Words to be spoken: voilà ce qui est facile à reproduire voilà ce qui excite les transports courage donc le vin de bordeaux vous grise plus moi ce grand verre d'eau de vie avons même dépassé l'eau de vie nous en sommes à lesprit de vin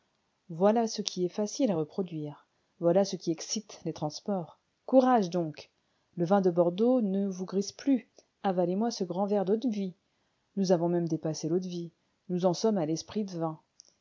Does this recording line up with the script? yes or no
no